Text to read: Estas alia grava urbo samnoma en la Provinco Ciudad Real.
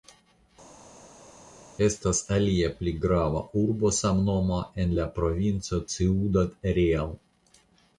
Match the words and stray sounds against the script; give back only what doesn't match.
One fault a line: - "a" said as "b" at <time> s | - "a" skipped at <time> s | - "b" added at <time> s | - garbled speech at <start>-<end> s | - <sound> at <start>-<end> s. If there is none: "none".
- "pli" added at 2.8 s